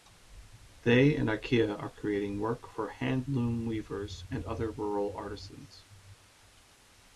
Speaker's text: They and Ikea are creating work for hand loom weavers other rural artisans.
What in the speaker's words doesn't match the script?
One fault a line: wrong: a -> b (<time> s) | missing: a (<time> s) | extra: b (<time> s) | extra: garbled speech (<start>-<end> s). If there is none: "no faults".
extra: and (4.3 s)